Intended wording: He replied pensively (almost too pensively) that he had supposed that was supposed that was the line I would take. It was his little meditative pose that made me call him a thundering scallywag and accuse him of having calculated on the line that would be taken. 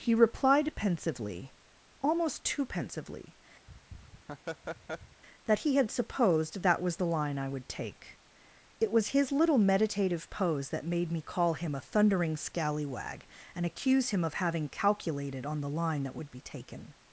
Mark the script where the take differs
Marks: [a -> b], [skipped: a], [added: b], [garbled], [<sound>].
He replied pensively (almost too pensively) [laugh] that he had supposed that was [skipped: supposed that was] the line I would take. It was his little meditative pose that made me call him a thundering scallywag and accuse him of having calculated on the line that would be taken.